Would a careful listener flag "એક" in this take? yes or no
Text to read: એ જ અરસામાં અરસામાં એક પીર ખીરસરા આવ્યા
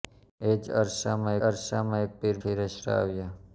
no